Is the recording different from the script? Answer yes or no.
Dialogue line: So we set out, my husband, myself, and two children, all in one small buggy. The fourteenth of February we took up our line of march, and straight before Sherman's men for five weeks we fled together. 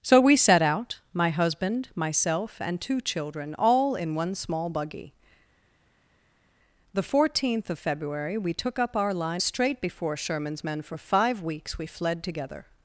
yes